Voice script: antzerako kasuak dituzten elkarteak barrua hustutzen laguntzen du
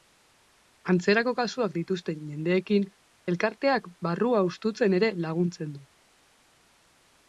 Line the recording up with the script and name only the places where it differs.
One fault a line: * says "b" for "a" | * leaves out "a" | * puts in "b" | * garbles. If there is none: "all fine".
* puts in "jendeekin"
* puts in "ere"